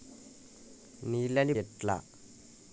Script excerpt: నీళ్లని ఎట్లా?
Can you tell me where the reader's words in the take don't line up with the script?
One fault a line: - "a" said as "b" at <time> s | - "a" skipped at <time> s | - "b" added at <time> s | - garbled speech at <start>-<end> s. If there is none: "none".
none